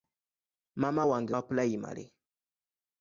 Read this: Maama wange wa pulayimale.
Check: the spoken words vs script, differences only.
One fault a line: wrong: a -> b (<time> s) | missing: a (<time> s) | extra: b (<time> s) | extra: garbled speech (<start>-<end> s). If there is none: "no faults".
no faults